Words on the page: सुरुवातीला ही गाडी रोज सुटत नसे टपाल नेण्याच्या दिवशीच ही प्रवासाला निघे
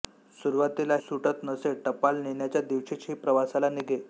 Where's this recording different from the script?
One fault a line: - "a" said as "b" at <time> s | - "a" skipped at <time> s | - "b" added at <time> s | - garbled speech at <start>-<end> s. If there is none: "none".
- "ही गाडी रोज" skipped at 0.9 s